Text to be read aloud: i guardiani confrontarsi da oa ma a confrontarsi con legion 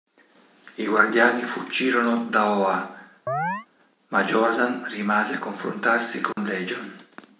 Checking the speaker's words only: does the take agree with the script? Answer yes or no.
no